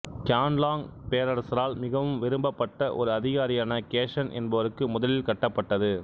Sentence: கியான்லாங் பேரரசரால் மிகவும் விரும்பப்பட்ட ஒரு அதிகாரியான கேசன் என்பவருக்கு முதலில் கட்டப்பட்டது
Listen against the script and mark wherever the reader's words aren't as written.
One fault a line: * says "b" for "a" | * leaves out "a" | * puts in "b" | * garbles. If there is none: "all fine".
all fine